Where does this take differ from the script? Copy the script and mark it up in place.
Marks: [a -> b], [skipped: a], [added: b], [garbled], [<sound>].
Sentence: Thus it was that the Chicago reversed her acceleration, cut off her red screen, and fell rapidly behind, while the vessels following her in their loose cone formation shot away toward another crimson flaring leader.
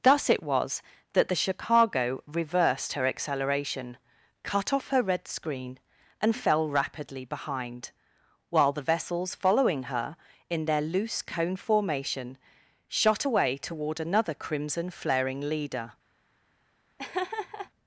Thus it was that the Chicago reversed her acceleration, cut off her red screen, and fell rapidly behind, while the vessels following her in their loose cone formation shot away toward another crimson flaring leader. [laugh]